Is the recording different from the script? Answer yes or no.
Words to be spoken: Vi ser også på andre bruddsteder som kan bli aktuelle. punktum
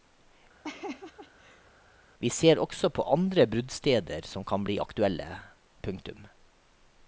no